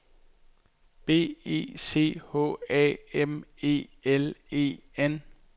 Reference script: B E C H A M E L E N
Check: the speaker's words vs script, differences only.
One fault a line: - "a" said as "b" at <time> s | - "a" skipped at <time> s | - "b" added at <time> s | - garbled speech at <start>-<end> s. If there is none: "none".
none